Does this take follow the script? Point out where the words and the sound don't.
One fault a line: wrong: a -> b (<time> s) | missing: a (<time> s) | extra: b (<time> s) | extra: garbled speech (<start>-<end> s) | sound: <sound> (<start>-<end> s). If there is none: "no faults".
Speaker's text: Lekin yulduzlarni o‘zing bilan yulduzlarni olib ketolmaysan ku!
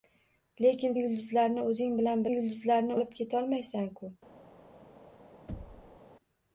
sound: thud (5.5-6.0 s)